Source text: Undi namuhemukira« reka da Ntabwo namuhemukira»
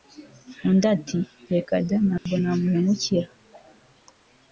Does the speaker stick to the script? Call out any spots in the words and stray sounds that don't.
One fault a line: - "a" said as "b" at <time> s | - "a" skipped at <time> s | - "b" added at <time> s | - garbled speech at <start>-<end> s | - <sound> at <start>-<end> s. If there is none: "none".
- "namuhemukira" said as "ati" at 0.9 s
- dropout at 2.2-2.3 s